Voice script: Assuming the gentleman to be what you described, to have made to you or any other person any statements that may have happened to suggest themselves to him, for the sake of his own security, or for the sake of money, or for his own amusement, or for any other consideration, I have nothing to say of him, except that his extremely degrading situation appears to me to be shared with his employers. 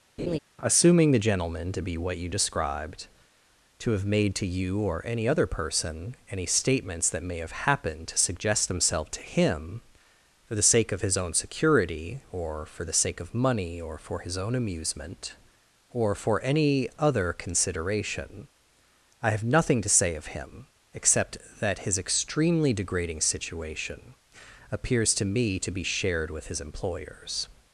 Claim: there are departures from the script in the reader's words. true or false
false